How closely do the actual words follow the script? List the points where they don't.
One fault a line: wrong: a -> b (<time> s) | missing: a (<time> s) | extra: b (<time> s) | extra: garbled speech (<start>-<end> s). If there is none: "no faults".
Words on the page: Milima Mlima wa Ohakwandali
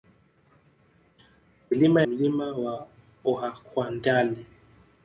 no faults